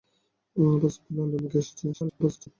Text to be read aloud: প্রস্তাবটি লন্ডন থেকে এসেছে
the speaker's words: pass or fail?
fail